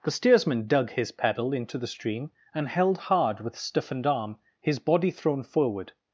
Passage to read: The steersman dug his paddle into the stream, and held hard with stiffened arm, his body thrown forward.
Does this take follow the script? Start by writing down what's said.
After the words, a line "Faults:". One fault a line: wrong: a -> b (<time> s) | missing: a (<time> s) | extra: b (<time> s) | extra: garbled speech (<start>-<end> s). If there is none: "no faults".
The steersman dug his paddle into the stream, and held hard with stiffened arm, his body thrown forward.
Faults:
no faults